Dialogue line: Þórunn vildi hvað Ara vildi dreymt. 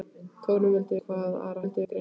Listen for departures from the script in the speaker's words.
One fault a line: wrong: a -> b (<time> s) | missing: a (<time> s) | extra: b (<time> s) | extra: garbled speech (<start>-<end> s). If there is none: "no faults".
no faults